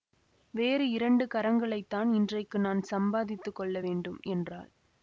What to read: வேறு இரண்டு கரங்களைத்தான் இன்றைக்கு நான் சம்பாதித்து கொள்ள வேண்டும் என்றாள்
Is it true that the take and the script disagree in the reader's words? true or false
false